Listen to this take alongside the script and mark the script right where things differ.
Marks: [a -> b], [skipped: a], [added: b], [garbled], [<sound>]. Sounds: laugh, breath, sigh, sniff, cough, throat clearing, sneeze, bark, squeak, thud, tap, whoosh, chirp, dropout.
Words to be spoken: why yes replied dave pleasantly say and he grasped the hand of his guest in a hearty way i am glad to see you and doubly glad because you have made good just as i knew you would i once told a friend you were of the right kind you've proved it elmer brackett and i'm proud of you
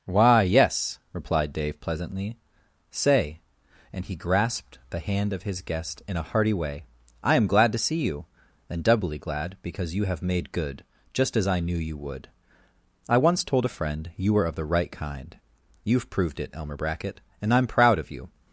why yes replied dave pleasantly say and he grasped the hand of his guest in a hearty way i am glad to see you and doubly glad because you have made good just as i knew you would i once told a friend you were of the right kind you've proved it elmer brackett and i'm proud of you